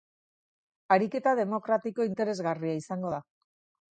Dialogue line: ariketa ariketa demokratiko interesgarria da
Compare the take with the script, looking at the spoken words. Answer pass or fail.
fail